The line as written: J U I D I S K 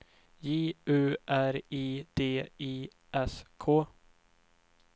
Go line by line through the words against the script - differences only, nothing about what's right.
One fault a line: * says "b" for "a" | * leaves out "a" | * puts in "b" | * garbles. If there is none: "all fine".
* puts in "R"